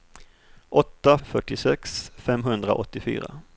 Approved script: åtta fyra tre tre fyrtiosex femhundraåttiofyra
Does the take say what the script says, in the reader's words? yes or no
no